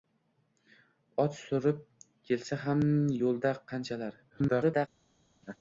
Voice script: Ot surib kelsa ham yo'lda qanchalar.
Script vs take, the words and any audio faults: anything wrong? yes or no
yes